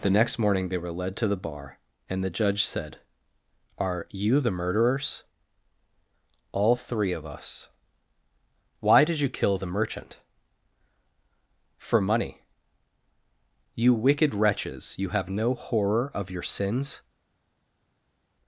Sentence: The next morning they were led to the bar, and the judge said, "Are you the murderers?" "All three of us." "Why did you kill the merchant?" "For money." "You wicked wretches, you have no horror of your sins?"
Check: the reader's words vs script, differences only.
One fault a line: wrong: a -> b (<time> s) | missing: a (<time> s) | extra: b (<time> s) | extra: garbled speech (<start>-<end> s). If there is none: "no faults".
no faults